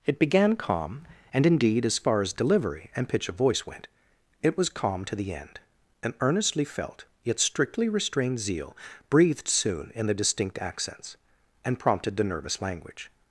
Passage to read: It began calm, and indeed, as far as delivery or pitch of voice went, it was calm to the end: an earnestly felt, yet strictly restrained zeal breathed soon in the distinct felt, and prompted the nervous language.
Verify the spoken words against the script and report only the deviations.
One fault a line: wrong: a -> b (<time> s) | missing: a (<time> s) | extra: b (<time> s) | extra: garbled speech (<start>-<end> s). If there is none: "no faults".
wrong: or -> and (3.0 s)
wrong: felt -> accents (10.6 s)